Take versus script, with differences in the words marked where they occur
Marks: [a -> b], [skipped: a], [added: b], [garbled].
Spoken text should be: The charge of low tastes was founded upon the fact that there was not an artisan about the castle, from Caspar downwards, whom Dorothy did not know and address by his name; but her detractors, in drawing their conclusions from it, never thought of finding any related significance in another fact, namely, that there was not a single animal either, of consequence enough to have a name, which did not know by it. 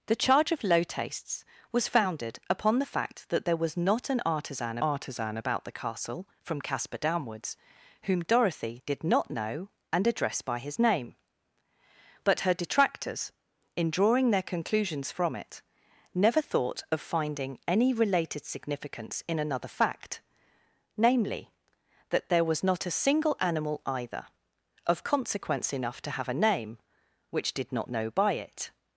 The charge of low tastes was founded upon the fact that there was not an artisan [added: artisan] about the castle, from Caspar downwards, whom Dorothy did not know and address by his name; but her detractors, in drawing their conclusions from it, never thought of finding any related significance in another fact, namely, that there was not a single animal either, of consequence enough to have a name, which did not know by it.